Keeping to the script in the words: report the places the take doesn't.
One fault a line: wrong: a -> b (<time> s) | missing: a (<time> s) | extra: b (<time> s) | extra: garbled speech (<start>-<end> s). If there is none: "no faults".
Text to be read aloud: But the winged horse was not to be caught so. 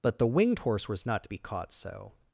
no faults